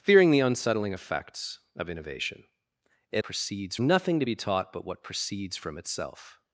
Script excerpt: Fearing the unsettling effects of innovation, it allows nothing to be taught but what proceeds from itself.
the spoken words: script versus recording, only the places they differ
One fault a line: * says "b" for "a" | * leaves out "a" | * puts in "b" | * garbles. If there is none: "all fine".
* says "proceeds" for "allows"